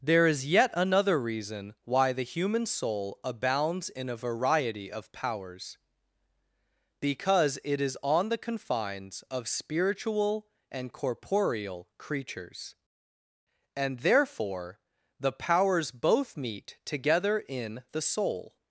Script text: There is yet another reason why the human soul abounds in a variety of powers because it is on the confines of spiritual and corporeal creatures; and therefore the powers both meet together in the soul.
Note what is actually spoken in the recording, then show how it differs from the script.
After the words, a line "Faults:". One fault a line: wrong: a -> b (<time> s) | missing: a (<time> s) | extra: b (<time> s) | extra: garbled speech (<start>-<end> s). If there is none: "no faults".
There is yet another reason why the human soul abounds in a variety of powers because it is on the confines of spiritual and corporeal creatures; and therefore the powers both meet together in the soul.
Faults:
no faults